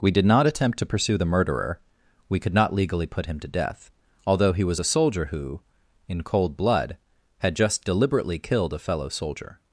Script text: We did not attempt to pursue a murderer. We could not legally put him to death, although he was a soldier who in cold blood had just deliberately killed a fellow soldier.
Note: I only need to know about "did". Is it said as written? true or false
true